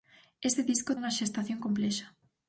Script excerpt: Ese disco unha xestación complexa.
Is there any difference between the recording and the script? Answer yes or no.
no